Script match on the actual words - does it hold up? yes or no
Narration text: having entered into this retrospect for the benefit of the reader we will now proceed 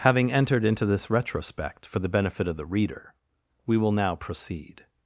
yes